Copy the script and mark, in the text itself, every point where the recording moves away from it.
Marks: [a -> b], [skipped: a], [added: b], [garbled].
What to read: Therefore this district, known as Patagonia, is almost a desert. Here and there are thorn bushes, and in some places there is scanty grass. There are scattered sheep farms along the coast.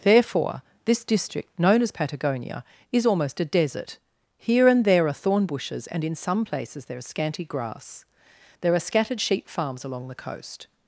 Therefore this district, known as Patagonia, is almost a desert. Here and there are thorn bushes, and in some places there is scanty grass. There are scattered sheep farms along the coast.